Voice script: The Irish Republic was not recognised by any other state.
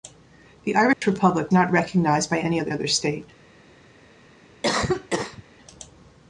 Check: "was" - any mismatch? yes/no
yes